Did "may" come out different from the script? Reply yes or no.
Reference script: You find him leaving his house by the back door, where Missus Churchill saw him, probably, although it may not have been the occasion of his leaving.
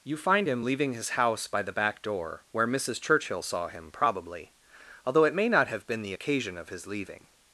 no